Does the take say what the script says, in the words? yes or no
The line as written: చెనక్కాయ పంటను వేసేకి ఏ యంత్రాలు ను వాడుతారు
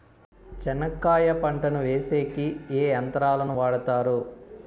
yes